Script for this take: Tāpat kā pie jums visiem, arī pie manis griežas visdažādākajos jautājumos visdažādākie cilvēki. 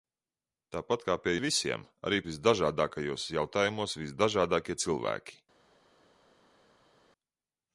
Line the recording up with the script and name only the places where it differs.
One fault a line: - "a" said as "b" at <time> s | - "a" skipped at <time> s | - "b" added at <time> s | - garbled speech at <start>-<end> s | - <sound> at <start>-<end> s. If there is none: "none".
- "jums" skipped at 1.3 s
- "pie manis griežas" skipped at 2.2 s